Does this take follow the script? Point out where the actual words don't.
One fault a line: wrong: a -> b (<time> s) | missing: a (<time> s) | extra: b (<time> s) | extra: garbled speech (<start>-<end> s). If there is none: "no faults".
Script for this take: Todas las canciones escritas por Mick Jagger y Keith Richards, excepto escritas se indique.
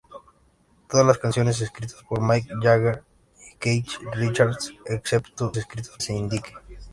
no faults